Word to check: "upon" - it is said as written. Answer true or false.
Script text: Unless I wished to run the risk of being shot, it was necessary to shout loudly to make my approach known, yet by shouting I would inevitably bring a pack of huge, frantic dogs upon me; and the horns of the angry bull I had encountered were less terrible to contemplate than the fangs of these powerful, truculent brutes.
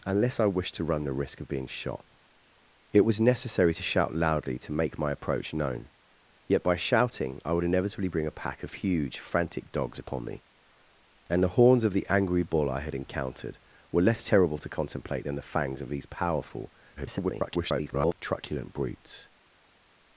true